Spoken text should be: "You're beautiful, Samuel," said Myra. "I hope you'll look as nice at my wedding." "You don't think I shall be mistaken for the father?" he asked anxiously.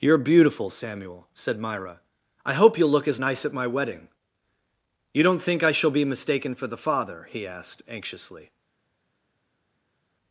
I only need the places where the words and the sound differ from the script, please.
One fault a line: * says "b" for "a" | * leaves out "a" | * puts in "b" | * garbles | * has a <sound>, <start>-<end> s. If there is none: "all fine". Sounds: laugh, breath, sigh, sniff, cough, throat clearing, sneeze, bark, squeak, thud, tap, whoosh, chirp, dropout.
all fine